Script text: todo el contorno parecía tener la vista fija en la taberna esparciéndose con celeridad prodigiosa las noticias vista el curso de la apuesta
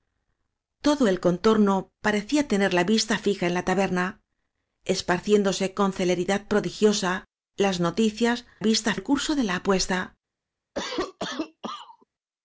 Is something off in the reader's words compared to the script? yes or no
no